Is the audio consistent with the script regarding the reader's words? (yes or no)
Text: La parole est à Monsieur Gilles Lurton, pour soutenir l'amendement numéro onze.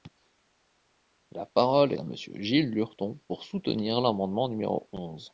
no